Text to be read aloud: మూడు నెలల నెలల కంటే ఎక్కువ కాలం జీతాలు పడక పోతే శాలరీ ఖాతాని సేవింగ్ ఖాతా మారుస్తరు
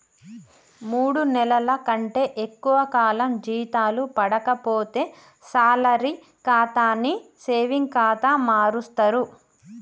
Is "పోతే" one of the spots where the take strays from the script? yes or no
no